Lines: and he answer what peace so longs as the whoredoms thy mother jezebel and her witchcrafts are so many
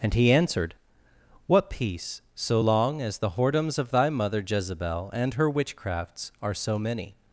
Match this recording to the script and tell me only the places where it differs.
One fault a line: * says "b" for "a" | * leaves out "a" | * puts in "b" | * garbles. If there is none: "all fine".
* says "answered" for "answer"
* says "long" for "longs"
* puts in "of"